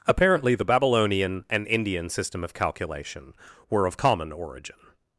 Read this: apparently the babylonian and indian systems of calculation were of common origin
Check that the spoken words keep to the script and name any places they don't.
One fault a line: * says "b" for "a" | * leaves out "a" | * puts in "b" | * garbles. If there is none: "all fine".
* says "system" for "systems"